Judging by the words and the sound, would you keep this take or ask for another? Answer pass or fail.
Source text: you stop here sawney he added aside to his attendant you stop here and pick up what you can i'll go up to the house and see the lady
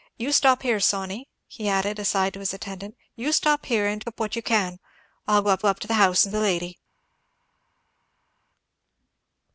fail